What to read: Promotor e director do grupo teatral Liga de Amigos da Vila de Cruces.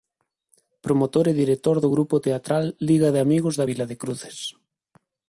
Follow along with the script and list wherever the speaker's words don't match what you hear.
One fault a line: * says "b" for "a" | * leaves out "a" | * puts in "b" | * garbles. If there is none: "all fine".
all fine